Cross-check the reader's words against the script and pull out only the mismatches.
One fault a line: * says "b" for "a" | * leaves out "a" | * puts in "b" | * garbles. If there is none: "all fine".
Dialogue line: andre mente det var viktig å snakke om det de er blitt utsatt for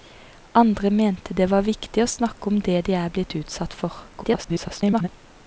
* garbles